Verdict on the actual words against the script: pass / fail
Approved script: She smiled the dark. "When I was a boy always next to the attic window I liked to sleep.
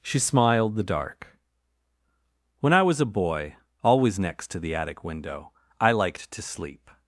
pass